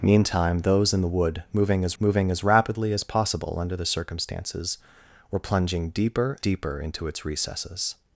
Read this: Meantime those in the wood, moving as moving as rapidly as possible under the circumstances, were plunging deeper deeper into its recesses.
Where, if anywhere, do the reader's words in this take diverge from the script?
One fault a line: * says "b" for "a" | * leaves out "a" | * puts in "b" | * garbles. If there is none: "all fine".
all fine